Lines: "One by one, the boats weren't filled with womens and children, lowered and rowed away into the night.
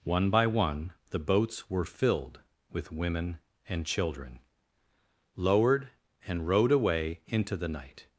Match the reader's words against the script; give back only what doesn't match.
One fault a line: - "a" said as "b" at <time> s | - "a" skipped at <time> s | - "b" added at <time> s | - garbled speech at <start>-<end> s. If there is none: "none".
- "weren't" said as "were" at 1.7 s
- "womens" said as "women" at 2.9 s